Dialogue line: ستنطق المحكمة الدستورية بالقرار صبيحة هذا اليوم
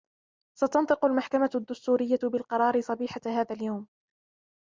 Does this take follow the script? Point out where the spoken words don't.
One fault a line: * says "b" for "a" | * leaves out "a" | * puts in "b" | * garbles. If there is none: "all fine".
all fine